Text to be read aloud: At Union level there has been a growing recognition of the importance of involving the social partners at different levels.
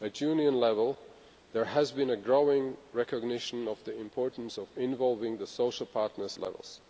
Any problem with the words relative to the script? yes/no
yes